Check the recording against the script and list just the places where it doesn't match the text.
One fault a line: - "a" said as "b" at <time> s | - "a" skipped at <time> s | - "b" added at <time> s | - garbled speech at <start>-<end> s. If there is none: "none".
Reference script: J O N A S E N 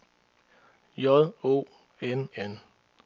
- "A S E" skipped at 2.3 s